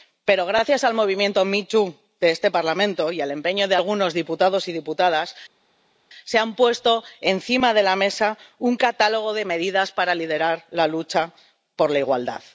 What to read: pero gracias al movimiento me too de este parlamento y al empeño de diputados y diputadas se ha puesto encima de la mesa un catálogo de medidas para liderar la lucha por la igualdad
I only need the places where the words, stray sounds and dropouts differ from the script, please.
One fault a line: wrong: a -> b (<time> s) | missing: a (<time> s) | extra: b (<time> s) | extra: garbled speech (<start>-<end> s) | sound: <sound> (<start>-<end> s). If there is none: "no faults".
extra: algunos (3.8 s)